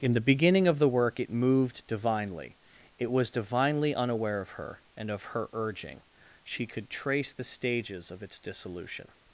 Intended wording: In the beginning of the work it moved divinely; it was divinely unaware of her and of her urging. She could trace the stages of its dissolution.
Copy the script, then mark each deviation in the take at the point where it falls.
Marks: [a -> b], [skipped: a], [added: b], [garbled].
In the beginning of the work it moved divinely; it was divinely unaware of her and of her urging. She could trace the stages of its dissolution.